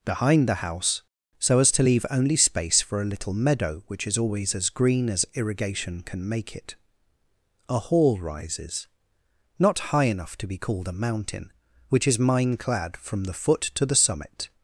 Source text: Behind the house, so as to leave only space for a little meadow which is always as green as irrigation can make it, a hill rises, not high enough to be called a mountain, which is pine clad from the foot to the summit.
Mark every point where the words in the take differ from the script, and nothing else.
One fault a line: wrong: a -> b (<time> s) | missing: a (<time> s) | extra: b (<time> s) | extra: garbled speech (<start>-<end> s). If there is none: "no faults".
wrong: hill -> hall (7.8 s)
wrong: pine -> mine (12.2 s)